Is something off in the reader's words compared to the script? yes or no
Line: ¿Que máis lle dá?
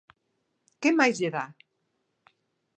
no